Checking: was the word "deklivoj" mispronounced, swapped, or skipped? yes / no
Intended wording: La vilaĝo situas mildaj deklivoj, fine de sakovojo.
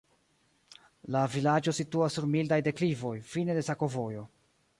no